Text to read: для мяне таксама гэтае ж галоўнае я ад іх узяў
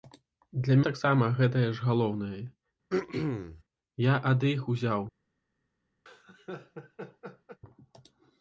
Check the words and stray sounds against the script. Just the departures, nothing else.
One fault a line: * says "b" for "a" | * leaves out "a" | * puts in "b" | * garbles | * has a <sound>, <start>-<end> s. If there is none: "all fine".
* leaves out "мяне"
* has a throat clearing, 2.9-3.6 s
* has a laugh, 6.1-7.6 s